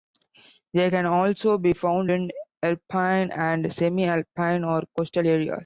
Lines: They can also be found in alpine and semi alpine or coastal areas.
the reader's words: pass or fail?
pass